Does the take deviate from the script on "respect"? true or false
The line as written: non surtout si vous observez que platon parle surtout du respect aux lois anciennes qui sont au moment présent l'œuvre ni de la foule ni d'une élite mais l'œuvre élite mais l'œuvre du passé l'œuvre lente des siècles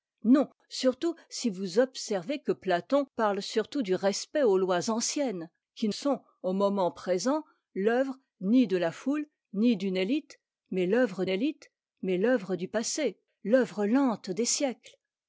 false